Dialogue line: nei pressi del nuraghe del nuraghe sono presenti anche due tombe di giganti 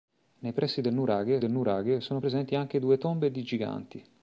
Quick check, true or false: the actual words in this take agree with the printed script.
true